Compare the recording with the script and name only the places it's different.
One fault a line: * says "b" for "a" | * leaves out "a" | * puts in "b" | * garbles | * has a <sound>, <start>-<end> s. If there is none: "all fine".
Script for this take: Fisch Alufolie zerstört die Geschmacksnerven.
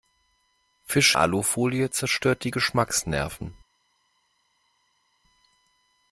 all fine